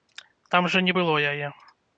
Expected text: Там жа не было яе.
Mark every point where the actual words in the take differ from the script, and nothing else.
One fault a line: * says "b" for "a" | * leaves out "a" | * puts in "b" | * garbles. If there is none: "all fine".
all fine